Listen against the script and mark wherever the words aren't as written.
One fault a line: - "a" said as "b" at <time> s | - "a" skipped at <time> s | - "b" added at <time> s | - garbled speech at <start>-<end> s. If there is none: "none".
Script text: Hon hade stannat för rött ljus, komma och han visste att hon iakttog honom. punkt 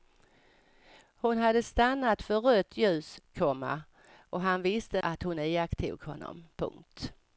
none